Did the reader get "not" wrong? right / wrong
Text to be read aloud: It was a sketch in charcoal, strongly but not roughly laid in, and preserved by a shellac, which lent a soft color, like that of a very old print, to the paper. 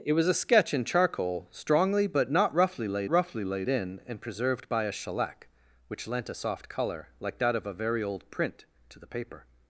right